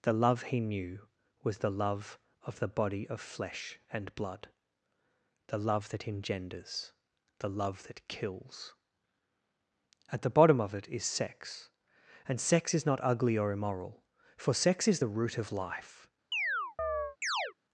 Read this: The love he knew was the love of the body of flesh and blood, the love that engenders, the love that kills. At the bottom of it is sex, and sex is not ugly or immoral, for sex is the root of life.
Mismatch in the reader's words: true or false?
false